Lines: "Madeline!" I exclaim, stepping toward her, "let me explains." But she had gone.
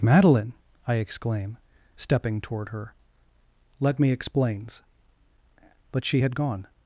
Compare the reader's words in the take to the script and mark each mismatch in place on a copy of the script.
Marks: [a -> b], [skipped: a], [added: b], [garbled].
"Madeline!" I exclaim, stepping toward her, "let me explains." But she had gone.